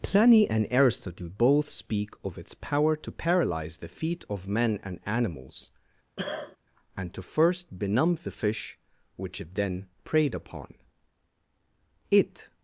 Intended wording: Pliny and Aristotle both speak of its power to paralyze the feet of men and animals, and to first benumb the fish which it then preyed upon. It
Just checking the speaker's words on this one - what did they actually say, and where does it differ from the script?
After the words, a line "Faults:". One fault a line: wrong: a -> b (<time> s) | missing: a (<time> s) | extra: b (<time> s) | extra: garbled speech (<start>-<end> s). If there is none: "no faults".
Pliny and Aristotle both speak of its power to paralyze the feet of men and animals, and to first benumb the fish which it then preyed upon. It
Faults:
no faults